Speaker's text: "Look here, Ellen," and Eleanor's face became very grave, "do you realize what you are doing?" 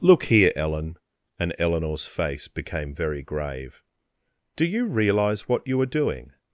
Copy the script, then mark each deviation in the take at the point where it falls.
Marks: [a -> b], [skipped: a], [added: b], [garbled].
"Look here, Ellen," and Eleanor's face became very grave, "do you realize what you are doing?"